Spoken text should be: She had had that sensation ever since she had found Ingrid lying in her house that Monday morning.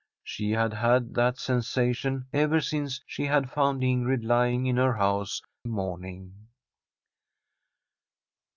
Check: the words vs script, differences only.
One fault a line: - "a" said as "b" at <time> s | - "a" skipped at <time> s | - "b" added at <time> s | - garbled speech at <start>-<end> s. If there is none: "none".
- "that Monday" skipped at 5.4 s